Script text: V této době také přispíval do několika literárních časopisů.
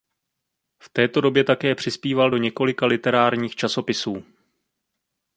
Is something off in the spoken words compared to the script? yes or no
no